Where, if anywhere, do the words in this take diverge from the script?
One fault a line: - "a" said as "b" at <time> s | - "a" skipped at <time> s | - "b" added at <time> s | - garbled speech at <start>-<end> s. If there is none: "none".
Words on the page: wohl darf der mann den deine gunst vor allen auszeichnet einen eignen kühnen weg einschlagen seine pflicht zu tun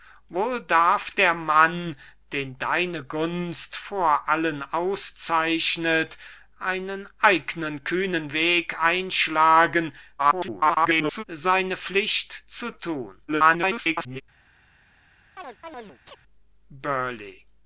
- garbled speech at 10.2-11.2 s
- garbled speech at 13.3-14.2 s